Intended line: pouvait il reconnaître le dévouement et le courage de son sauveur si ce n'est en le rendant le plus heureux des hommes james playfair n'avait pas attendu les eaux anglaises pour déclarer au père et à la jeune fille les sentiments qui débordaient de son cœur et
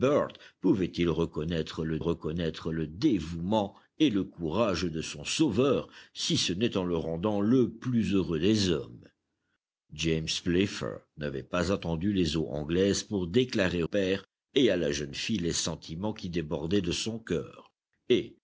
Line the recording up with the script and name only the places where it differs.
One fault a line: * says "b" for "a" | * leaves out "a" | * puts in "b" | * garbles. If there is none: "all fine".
* puts in "reconnaître le"
* leaves out "au"